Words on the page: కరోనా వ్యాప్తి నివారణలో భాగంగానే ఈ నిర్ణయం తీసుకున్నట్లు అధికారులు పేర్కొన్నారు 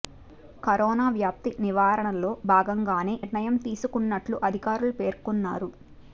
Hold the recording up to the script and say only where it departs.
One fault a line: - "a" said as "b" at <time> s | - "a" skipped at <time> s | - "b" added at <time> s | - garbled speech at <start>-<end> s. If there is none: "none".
- "ఈ" skipped at 3.1 s